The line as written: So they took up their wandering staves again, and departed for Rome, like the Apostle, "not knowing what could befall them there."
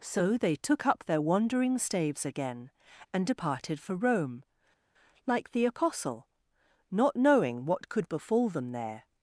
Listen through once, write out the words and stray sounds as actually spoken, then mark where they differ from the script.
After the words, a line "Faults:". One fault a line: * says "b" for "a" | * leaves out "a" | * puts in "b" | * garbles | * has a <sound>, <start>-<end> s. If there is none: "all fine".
So they took up their wandering staves again, and departed for Rome, like the Apostle, "not knowing what could befall them there."
Faults:
all fine